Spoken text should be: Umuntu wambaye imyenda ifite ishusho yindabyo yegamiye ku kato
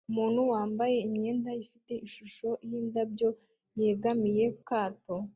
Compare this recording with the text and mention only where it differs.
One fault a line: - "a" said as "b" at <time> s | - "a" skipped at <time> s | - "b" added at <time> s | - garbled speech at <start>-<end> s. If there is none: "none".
- "ku" skipped at 4.5 s